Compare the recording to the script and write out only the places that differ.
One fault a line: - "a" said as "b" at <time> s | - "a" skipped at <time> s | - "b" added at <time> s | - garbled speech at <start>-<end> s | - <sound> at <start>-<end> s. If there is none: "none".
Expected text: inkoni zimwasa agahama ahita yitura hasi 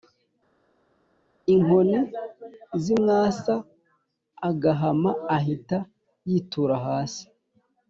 none